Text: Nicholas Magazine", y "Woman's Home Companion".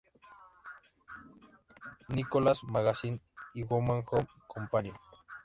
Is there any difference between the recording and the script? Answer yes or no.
no